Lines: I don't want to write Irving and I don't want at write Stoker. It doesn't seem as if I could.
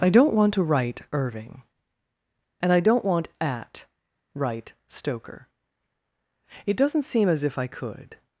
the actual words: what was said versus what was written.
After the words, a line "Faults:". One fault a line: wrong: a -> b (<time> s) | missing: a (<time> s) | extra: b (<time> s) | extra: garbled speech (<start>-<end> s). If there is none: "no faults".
I don't want to write Irving and I don't want at write Stoker. It doesn't seem as if I could.
Faults:
no faults